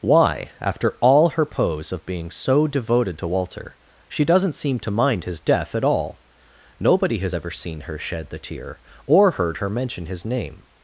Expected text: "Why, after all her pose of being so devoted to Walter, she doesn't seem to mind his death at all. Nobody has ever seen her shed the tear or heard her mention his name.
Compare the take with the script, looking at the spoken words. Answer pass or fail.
pass